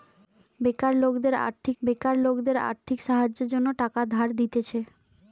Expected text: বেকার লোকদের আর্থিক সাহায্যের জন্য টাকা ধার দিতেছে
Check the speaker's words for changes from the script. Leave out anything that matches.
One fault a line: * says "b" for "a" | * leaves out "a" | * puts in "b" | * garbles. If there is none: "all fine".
* puts in "বেকার লোকদের আর্থিক"